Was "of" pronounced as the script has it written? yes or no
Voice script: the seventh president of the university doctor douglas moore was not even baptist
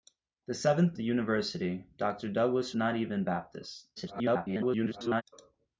no